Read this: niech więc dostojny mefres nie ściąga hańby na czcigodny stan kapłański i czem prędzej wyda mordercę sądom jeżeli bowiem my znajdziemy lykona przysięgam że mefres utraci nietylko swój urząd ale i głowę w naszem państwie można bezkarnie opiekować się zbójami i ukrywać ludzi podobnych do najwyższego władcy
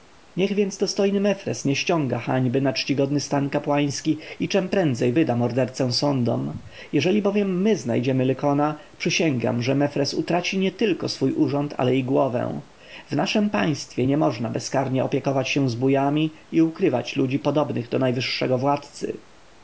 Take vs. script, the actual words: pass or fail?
fail